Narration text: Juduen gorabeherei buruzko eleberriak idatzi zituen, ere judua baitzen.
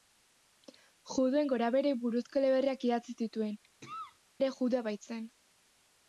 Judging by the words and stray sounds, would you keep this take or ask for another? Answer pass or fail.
fail